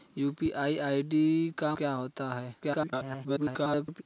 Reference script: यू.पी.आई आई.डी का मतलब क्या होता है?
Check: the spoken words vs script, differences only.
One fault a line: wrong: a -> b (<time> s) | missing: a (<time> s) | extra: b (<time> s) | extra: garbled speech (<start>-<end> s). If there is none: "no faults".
missing: मतलब (1.8 s)
extra: garbled speech (2.6-4.0 s)